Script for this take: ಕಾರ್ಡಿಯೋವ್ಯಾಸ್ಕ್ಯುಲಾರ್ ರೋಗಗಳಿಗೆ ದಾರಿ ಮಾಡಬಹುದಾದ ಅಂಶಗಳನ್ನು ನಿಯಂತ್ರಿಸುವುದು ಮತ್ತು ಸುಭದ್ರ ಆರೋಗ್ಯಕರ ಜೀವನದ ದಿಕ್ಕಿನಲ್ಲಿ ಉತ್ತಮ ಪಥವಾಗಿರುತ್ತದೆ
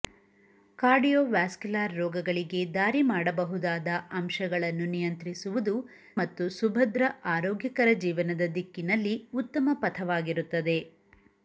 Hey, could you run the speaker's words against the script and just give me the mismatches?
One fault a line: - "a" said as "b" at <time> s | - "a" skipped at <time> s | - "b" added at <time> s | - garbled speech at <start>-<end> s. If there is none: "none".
none